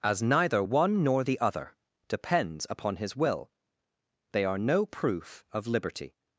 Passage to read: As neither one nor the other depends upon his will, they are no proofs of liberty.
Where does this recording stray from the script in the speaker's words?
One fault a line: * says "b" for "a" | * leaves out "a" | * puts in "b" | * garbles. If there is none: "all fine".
* says "proof" for "proofs"